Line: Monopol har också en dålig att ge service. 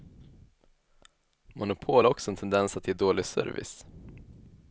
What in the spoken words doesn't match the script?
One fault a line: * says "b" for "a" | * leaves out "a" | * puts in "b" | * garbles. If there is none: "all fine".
* says "tendens" for "dålig"
* puts in "dålig"